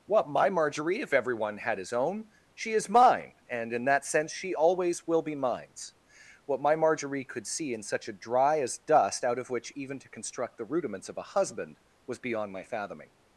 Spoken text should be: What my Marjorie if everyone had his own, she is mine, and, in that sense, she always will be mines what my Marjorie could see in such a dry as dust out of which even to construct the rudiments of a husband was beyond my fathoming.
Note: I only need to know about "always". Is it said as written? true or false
true